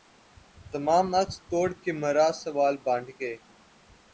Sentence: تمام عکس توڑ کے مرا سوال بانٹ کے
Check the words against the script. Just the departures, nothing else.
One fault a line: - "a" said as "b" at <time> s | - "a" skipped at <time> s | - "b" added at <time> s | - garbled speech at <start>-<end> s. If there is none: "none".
none